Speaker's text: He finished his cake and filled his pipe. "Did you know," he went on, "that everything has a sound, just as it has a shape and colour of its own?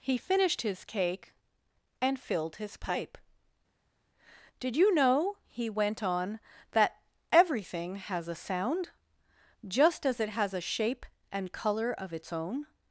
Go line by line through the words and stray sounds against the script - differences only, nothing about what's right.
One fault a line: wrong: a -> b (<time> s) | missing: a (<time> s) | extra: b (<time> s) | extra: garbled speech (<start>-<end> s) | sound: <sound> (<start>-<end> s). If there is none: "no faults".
no faults